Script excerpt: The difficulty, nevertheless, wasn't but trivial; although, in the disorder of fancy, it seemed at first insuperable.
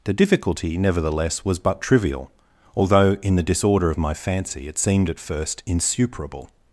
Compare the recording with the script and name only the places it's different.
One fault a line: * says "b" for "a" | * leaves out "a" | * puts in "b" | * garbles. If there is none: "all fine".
* says "was" for "wasn't"
* puts in "my"